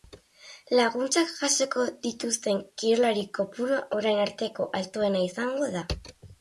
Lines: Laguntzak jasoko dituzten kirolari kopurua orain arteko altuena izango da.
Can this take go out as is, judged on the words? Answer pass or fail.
pass